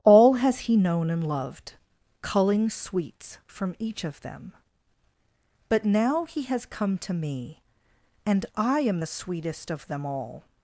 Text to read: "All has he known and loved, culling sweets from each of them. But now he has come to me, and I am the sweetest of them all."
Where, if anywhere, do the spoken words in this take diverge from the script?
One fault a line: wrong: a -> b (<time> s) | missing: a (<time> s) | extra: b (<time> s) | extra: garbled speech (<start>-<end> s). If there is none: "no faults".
no faults